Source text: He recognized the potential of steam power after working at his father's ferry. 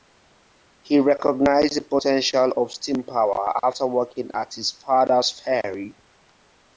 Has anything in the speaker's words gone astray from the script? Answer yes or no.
no